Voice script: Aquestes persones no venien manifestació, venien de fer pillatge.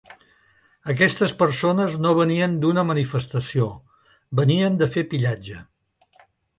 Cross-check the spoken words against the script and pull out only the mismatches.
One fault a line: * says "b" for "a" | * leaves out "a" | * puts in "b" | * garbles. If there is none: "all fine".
* puts in "d'una"